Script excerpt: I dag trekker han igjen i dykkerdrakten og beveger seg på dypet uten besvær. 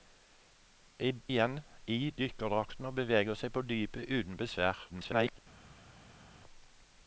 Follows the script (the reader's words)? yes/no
no